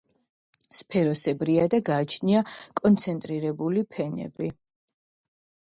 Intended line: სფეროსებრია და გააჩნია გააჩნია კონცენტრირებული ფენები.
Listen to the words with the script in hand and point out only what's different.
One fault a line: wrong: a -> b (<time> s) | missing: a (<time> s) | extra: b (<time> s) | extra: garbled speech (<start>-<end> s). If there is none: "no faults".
missing: გააჩნია (2.5 s)